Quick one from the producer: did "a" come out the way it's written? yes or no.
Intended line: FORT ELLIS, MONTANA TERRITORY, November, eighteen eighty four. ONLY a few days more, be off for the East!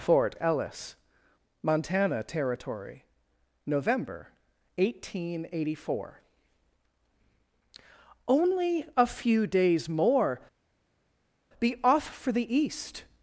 yes